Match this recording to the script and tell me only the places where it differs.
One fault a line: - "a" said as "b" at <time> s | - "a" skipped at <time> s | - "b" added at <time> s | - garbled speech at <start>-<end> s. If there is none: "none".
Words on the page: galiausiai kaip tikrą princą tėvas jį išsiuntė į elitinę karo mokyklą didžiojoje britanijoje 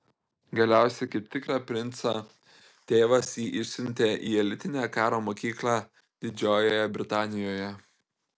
none